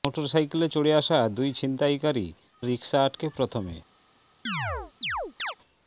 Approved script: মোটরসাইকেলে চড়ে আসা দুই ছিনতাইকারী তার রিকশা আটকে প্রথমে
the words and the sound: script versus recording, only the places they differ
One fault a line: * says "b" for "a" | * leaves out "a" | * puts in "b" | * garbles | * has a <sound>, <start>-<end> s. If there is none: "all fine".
* leaves out "তার"
* has a chirp, 4.5-5.6 s